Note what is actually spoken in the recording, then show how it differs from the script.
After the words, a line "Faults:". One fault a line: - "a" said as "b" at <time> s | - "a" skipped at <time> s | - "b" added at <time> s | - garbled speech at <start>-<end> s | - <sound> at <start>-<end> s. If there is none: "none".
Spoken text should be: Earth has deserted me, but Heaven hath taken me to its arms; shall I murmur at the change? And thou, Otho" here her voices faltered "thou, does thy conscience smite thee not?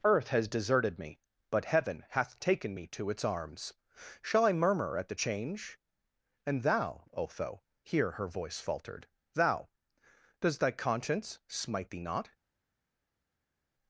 Earth has deserted me, but Heaven hath taken me to its arms; shall I murmur at the change? And thou, Otho" here her voice faltered "thou, does thy conscience smite thee not?
Faults:
- "voices" said as "voice" at 8.3 s